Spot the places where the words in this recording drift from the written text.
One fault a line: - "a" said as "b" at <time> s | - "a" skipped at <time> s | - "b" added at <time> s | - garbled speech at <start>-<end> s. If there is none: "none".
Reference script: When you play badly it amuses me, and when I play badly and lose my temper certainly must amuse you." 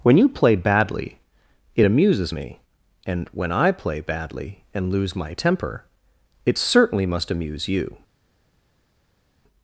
- "it" added at 6.4 s